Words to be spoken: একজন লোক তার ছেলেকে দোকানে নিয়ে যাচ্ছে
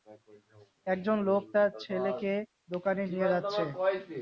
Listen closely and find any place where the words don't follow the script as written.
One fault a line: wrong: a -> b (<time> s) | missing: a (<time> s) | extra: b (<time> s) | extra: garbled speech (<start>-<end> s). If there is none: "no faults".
no faults